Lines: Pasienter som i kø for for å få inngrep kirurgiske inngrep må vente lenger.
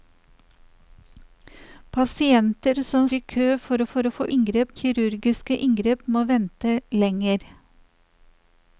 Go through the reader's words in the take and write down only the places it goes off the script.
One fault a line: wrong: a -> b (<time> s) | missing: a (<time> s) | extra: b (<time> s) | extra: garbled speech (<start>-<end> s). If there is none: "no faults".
no faults